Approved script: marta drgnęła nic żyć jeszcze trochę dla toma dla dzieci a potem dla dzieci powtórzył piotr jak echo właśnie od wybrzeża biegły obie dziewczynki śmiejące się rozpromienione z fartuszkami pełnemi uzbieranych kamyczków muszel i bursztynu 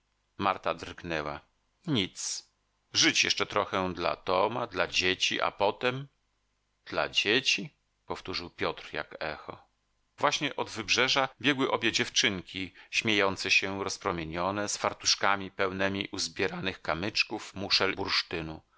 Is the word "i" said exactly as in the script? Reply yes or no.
no